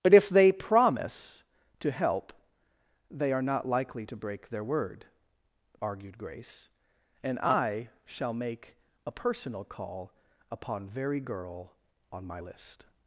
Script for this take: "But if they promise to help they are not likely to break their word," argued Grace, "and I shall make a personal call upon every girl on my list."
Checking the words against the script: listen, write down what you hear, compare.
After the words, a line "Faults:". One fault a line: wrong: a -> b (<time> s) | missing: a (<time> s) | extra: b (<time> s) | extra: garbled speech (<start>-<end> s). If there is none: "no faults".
"But if they promise to help they are not likely to break their word," argued Grace, "and I shall make a personal call upon very girl on my list."
Faults:
wrong: every -> very (10.9 s)